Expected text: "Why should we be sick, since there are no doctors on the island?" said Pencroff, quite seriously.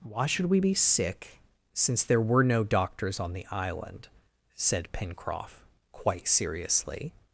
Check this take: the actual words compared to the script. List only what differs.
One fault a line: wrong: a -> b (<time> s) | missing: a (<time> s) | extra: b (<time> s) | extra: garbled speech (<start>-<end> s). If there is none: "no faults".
wrong: are -> were (2.2 s)